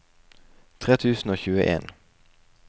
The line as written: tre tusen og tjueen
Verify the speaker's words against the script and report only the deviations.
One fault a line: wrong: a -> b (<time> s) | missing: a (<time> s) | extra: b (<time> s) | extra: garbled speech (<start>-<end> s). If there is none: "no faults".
no faults